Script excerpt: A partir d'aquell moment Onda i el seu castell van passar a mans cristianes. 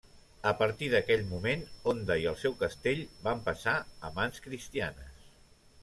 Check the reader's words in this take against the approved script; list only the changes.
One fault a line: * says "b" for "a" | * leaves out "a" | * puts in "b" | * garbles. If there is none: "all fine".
all fine